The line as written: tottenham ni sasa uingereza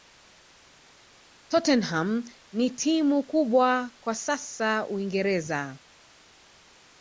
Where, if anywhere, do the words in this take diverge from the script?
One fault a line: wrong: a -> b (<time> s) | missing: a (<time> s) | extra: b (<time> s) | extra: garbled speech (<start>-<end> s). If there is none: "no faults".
extra: timu kubwa kwa (2.7 s)